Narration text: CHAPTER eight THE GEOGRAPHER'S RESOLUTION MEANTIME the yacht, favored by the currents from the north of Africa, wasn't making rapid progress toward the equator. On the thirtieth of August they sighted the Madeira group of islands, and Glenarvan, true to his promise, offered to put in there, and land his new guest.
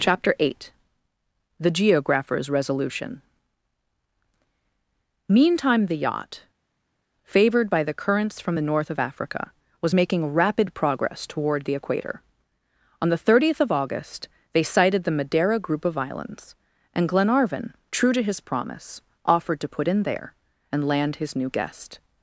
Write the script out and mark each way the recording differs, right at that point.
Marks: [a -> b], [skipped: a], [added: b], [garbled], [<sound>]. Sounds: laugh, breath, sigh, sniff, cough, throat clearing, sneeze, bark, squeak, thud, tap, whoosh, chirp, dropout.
CHAPTER eight THE GEOGRAPHER'S RESOLUTION MEANTIME the yacht, favored by the currents from the north of Africa, [wasn't -> was] making rapid progress toward the equator. On the thirtieth of August they sighted the Madeira group of islands, and Glenarvan, true to his promise, offered to put in there, and land his new guest.